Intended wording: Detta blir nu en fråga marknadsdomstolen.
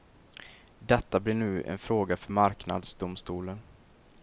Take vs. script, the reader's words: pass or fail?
fail